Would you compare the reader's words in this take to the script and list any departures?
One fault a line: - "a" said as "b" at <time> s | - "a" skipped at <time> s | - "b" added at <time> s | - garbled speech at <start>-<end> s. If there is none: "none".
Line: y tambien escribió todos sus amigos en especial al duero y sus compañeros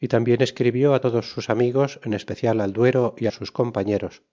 none